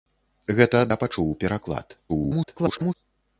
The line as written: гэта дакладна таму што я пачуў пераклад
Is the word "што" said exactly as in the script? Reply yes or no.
no